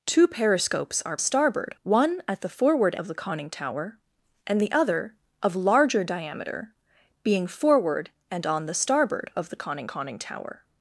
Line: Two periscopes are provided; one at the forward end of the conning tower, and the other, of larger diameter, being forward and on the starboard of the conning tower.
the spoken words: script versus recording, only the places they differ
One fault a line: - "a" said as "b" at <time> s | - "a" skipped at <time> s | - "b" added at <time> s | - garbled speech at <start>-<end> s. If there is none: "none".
- "provided" said as "starboard" at 1.2 s
- "end" skipped at 3.0 s
- "conning" added at 9.8 s